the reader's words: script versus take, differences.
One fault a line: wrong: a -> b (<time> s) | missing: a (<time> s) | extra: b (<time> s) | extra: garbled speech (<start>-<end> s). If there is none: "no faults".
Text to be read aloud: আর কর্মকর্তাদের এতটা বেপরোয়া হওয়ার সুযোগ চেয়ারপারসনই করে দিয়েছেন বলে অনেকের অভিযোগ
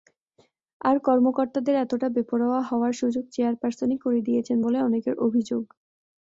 no faults